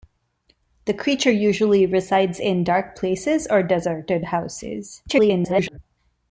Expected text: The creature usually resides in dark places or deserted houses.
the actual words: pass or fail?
fail